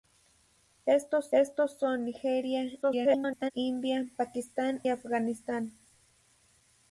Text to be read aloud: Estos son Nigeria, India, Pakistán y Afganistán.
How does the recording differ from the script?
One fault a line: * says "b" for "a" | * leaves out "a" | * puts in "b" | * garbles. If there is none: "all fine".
* puts in "estos"
* garbles
* leaves out "y"